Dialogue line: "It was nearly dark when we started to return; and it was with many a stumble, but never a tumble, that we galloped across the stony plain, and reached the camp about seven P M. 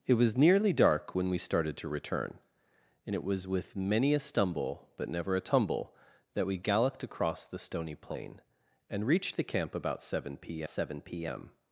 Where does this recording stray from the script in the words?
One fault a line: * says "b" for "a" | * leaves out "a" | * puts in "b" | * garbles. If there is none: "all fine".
* puts in "seven P"